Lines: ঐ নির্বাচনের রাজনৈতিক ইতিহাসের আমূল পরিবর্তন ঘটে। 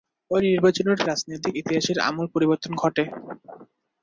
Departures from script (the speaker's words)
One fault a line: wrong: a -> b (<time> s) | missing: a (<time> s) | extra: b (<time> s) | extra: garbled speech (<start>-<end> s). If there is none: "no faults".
no faults